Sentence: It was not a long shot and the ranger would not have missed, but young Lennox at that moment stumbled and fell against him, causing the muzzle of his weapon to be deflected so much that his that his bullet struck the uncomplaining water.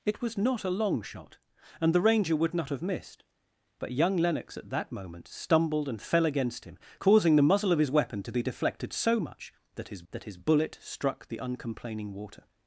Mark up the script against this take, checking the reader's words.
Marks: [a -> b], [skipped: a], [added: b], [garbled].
It was not a long shot and the ranger would not have missed, but young Lennox at that moment stumbled and fell against him, causing the muzzle of his weapon to be deflected so much that his that his bullet struck the uncomplaining water.